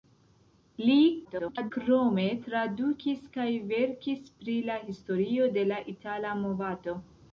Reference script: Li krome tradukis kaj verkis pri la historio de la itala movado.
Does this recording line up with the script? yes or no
no